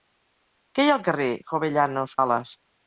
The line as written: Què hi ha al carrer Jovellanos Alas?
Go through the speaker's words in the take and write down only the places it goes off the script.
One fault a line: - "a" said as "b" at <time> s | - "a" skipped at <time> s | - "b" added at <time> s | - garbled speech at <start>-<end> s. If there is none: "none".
none